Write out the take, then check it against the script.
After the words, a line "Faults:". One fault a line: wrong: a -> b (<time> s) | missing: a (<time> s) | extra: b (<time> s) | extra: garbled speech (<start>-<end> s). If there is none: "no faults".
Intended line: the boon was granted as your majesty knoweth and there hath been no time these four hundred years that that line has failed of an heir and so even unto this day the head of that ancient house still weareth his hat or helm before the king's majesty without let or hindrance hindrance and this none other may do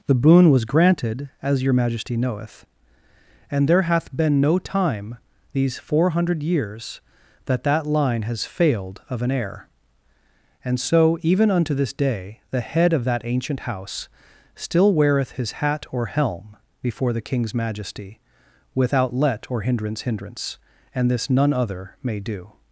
the boon was granted as your majesty knoweth and there hath been no time these four hundred years that that line has failed of an heir and so even unto this day the head of that ancient house still weareth his hat or helm before the king's majesty without let or hindrance hindrance and this none other may do
Faults:
no faults